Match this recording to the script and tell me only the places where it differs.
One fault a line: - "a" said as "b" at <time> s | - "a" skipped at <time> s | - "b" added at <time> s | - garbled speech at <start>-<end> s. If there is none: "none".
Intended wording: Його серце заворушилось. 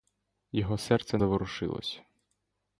none